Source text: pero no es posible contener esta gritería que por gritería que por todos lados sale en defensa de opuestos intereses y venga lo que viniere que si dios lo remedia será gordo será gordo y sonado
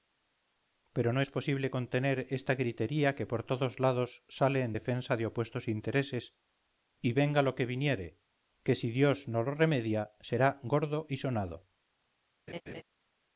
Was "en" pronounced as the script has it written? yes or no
yes